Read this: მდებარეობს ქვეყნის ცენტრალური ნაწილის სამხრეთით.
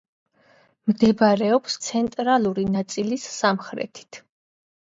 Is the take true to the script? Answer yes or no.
no